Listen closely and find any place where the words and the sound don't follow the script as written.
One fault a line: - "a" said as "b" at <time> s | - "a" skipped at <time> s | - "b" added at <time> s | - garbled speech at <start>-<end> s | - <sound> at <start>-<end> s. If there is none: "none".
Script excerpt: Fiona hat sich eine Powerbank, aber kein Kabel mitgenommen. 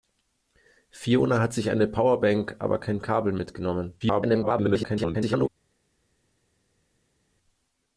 - garbled speech at 4.0-5.5 s